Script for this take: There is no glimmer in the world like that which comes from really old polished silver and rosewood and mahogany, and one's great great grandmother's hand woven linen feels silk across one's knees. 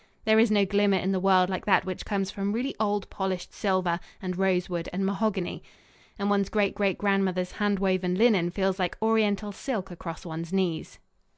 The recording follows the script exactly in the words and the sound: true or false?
false